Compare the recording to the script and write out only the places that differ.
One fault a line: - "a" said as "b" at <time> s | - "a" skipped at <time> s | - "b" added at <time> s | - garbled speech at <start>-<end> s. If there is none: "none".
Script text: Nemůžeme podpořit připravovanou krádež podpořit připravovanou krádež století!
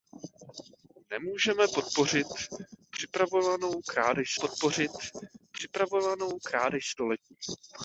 none